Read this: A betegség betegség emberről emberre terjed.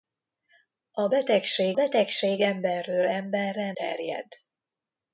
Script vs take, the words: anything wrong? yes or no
no